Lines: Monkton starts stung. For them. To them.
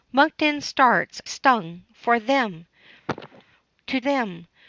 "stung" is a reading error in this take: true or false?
false